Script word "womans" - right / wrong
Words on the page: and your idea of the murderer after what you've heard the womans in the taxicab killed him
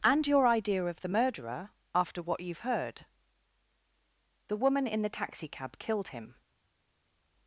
wrong